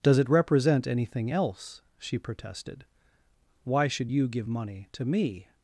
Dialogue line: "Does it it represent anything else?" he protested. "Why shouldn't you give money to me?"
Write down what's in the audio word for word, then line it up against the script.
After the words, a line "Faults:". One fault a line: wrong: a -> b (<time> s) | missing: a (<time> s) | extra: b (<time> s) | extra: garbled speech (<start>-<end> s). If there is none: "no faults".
"Does it represent anything else?" she protested. "Why should you give money to me?"
Faults:
missing: it (0.3 s)
wrong: he -> she (2.0 s)
wrong: shouldn't -> should (3.9 s)